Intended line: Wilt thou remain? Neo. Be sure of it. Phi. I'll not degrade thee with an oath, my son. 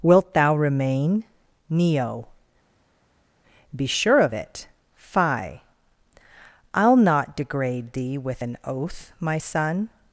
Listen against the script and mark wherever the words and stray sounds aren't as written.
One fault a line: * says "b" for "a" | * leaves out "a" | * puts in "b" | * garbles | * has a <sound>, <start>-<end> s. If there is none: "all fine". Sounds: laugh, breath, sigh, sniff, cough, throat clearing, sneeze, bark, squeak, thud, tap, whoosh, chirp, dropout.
all fine